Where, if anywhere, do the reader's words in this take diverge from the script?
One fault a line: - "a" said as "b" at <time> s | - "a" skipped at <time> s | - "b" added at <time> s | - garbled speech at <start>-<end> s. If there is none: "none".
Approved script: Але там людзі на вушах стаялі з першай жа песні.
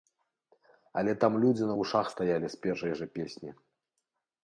none